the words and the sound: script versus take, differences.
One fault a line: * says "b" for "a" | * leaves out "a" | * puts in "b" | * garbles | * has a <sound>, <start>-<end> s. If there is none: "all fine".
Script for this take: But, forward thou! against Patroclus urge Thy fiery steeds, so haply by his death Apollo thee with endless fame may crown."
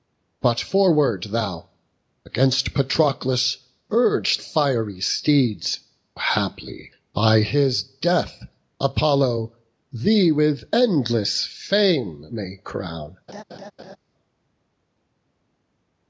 * leaves out "Thy"
* leaves out "so"
* has a laugh, 13.3-14.0 s